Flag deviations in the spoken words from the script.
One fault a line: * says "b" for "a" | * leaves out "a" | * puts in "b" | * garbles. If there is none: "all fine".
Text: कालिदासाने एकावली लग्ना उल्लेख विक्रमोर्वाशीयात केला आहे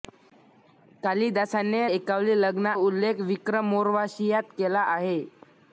all fine